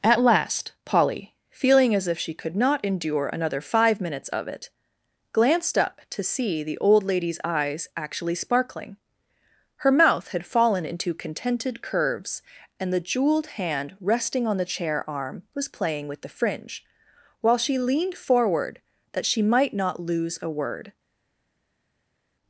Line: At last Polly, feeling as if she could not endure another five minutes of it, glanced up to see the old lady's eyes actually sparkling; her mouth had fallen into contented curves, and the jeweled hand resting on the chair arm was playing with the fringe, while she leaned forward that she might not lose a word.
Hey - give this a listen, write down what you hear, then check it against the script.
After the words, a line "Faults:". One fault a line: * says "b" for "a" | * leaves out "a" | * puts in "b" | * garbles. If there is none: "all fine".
At last Polly, feeling as if she could not endure another five minutes of it, glanced up to see the old lady's eyes actually sparkling; her mouth had fallen into contented curves, and the jeweled hand resting on the chair arm was playing with the fringe, while she leaned forward that she might not lose a word.
Faults:
all fine